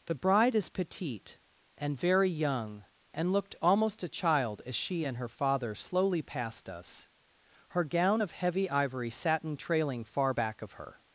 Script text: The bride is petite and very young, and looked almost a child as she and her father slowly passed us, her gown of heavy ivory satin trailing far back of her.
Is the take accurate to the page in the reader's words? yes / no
yes